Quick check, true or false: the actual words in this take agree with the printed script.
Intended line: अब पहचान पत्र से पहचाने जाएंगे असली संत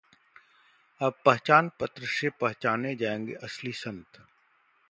true